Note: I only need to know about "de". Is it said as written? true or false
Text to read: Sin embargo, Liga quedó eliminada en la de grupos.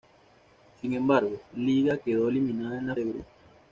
true